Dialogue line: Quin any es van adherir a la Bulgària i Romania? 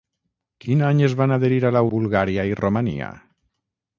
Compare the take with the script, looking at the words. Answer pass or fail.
pass